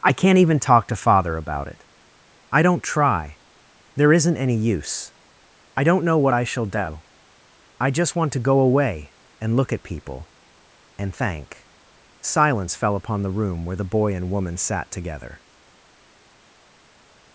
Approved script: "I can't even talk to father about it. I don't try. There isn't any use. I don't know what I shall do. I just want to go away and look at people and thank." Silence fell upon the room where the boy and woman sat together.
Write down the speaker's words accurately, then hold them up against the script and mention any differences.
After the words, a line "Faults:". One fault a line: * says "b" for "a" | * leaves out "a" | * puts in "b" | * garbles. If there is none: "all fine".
"I can't even talk to father about it. I don't try. There isn't any use. I don't know what I shall do. I just want to go away and look at people and thank." Silence fell upon the room where the boy and woman sat together.
Faults:
all fine